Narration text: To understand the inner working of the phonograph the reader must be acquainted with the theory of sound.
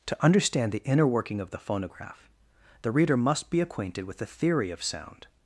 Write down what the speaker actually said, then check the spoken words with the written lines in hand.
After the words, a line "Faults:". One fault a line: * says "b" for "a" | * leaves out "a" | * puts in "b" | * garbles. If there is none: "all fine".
To understand the inner working of the phonograph the reader must be acquainted with the theory of sound.
Faults:
all fine